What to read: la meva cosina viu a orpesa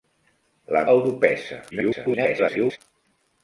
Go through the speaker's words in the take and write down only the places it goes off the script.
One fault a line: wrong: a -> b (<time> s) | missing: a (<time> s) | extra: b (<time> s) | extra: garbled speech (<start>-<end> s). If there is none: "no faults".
missing: meva cosina viu (0.8 s)
extra: garbled speech (1.7-2.8 s)